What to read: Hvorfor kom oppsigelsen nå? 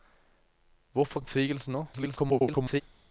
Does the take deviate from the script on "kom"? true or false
true